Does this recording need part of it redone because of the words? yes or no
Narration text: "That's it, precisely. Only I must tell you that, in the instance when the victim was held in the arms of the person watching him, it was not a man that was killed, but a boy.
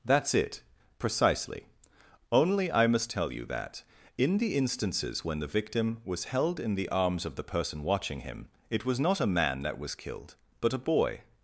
yes